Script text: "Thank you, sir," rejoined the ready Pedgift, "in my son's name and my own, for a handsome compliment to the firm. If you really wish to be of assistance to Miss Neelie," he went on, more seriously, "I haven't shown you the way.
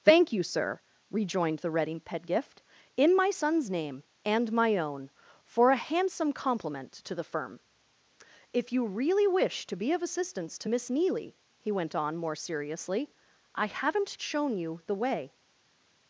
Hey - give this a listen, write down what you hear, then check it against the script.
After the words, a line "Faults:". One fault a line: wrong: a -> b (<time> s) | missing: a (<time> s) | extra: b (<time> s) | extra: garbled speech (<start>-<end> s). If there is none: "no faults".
"Thank you, sir," rejoined the ready Pedgift, "in my son's name and my own, for a handsome compliment to the firm. If you really wish to be of assistance to Miss Neelie," he went on, more seriously, "I haven't shown you the way.
Faults:
no faults